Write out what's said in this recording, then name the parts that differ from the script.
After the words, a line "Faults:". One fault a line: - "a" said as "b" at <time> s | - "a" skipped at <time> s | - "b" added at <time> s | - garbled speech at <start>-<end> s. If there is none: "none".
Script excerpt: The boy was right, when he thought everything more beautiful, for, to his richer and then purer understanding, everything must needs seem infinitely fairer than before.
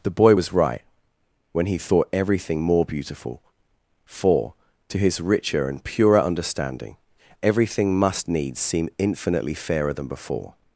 The boy was right, when he thought everything more beautiful, for, to his richer and purer understanding, everything must needs seem infinitely fairer than before.
Faults:
- "then" skipped at 5.8 s